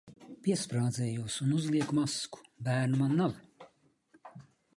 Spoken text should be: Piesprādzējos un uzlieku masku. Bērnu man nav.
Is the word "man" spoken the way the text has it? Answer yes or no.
yes